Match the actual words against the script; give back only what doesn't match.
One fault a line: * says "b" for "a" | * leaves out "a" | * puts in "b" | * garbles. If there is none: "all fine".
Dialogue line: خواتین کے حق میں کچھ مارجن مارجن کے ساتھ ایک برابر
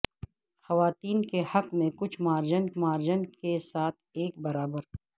all fine